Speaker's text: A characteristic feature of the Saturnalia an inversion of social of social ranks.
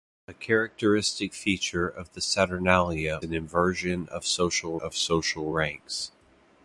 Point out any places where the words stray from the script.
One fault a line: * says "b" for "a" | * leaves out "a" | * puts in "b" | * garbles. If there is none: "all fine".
all fine